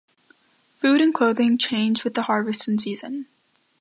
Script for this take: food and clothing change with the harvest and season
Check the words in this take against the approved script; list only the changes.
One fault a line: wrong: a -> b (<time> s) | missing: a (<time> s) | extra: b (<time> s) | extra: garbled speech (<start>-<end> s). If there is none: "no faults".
no faults